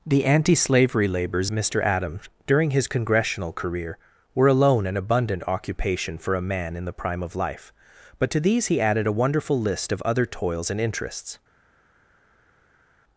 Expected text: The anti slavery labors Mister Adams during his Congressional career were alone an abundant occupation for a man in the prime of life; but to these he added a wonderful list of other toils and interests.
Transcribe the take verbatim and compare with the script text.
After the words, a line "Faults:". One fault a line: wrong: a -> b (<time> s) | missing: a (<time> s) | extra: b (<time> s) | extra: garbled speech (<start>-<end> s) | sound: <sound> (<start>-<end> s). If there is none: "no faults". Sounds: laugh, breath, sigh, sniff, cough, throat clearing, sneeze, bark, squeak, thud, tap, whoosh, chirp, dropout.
The anti slavery labors Mister Adams during his Congressional career were alone an abundant occupation for a man in the prime of life; but to these he added a wonderful list of other toils and interests.
Faults:
no faults